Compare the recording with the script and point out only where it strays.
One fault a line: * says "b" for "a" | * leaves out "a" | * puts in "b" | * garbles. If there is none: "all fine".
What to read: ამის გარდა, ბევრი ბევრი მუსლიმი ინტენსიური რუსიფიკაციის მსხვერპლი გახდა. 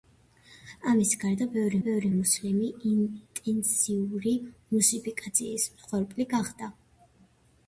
all fine